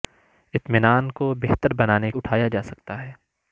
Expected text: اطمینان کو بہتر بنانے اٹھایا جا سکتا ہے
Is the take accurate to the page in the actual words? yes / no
yes